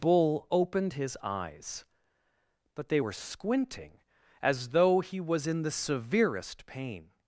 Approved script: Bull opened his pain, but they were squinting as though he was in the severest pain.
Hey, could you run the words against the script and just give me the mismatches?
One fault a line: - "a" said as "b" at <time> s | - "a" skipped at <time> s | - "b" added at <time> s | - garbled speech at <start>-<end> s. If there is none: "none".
- "pain" said as "eyes" at 1.2 s